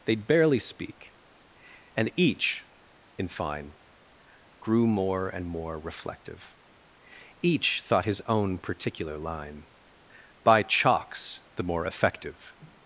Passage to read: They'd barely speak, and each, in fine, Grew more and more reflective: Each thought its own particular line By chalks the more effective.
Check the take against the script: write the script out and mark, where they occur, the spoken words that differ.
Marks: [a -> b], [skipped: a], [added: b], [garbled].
They'd barely speak, and each, in fine, Grew more and more reflective: Each thought [its -> his] own particular line By chalks the more effective.